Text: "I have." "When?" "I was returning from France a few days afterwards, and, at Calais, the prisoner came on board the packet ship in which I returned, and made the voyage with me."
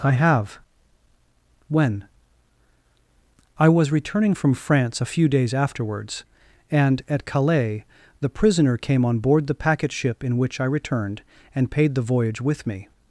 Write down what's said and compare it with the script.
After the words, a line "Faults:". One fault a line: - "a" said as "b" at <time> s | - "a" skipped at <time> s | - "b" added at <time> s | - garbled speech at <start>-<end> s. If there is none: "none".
"I have." "When?" "I was returning from France a few days afterwards, and, at Calais, the prisoner came on board the packet ship in which I returned, and paid the voyage with me."
Faults:
- "made" said as "paid" at 11.7 s